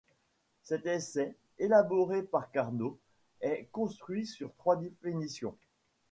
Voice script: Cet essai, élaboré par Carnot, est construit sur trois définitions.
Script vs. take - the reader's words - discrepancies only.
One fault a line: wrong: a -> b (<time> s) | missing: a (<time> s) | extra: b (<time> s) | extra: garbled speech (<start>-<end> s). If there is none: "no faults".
no faults